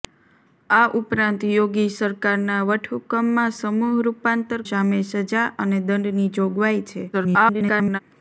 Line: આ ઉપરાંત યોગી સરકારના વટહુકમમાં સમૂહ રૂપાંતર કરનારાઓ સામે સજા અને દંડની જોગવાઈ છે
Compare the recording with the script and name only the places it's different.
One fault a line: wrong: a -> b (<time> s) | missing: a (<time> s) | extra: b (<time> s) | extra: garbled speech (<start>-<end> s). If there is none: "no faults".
missing: કરનારાઓ (4.6 s)
extra: garbled speech (7.1-8.0 s)